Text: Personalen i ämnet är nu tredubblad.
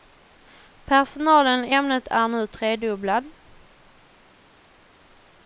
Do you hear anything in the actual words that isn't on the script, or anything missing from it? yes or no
no